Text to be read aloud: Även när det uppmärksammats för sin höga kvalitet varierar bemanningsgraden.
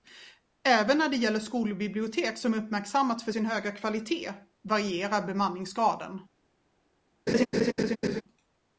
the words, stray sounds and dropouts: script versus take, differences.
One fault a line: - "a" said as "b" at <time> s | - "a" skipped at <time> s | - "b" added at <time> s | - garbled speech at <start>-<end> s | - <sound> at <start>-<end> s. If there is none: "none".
- "gäller skolbibliotek som" added at 1.1 s
- laugh at 7.3-8.2 s